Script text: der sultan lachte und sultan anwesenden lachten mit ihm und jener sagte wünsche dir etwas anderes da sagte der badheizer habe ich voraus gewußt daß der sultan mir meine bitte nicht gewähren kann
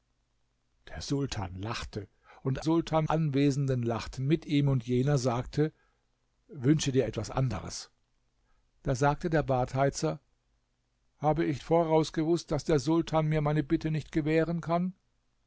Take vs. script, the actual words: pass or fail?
pass